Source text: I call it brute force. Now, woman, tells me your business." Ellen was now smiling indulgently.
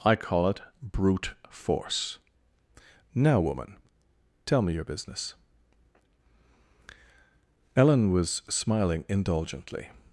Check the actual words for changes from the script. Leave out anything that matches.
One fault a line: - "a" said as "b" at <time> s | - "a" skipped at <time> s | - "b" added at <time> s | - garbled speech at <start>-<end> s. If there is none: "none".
- "tells" said as "tell" at 4.4 s
- "now" skipped at 8.4 s